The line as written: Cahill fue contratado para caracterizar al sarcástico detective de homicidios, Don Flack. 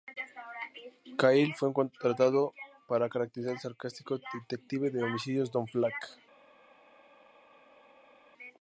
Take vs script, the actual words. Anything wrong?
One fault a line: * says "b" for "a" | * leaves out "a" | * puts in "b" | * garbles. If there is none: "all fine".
all fine